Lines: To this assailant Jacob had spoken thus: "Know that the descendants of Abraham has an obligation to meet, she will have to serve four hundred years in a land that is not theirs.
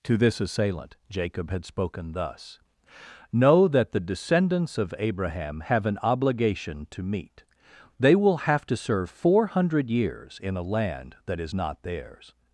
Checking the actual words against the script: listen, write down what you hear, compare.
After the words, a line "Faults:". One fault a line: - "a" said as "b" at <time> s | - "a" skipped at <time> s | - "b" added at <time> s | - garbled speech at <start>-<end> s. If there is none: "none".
To this assailant Jacob had spoken thus: "Know that the descendants of Abraham have an obligation to meet, they will have to serve four hundred years in a land that is not theirs.
Faults:
- "has" said as "have" at 5.6 s
- "she" said as "they" at 8.0 s